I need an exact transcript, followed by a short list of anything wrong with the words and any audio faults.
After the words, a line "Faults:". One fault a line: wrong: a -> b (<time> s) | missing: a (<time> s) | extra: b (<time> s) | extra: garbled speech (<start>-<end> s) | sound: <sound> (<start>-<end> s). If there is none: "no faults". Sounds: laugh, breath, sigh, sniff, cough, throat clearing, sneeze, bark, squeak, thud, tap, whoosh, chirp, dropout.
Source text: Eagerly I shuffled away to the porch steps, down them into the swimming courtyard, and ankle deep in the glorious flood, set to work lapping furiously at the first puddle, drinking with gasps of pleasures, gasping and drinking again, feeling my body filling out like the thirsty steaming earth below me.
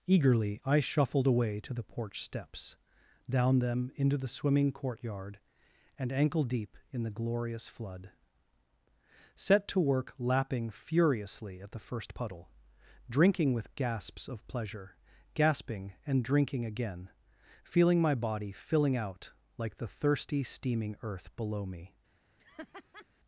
Eagerly I shuffled away to the porch steps, down them into the swimming courtyard, and ankle deep in the glorious flood, set to work lapping furiously at the first puddle, drinking with gasps of pleasure, gasping and drinking again, feeling my body filling out like the thirsty steaming earth below me.
Faults:
wrong: pleasures -> pleasure (14.5 s)
sound: laugh (22.4-23.1 s)